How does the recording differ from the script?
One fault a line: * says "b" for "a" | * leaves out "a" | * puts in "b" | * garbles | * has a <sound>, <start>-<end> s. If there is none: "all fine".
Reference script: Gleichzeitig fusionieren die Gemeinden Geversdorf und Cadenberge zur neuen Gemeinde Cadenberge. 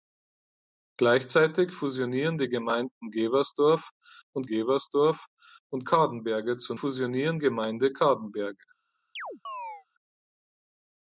* puts in "Geversdorf und"
* says "fusionieren" for "neuen"
* has a chirp, 9.2-9.9 s